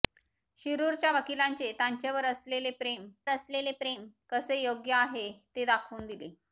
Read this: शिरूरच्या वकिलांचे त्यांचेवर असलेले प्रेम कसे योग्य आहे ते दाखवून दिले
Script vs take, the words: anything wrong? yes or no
yes